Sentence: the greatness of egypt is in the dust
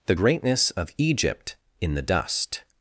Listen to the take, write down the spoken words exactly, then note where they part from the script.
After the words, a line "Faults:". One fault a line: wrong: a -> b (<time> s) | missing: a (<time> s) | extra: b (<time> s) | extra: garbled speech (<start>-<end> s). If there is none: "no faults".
the greatness of egypt in the dust
Faults:
missing: is (1.6 s)